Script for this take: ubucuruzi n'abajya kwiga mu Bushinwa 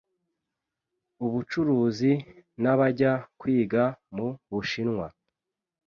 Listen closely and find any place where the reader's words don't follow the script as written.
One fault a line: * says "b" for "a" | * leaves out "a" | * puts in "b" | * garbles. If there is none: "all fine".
all fine